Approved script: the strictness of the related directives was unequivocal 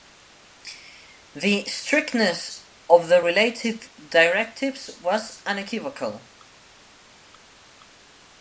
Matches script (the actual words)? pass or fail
pass